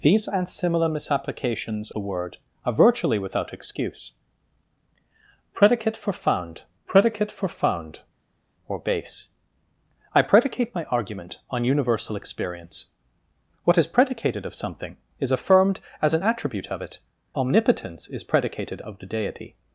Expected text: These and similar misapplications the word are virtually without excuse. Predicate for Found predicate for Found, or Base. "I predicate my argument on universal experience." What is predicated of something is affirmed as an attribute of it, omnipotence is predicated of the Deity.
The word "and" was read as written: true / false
true